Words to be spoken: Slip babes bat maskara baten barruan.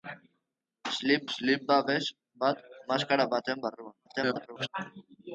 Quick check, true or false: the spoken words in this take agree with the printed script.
false